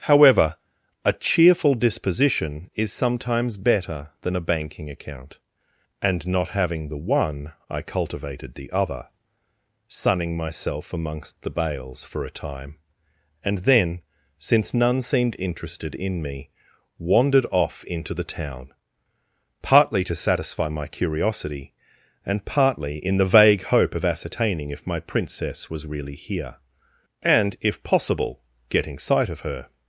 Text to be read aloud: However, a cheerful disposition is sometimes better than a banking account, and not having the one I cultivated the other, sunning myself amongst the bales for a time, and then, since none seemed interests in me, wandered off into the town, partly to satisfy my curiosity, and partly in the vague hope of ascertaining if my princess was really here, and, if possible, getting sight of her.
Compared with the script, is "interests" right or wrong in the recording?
wrong